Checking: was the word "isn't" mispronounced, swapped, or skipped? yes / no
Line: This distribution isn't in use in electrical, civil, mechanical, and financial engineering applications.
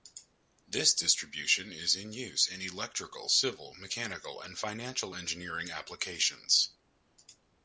yes